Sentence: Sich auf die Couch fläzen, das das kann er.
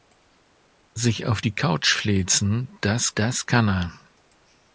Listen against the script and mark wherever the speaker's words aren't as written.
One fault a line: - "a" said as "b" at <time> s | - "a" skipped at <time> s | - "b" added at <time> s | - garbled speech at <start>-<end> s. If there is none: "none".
none